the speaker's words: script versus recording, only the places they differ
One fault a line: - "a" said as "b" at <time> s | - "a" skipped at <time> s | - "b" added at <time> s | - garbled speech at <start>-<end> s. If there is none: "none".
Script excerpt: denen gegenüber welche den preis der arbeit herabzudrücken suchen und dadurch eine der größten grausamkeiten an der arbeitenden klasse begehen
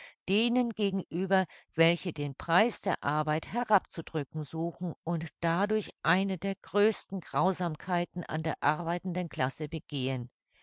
none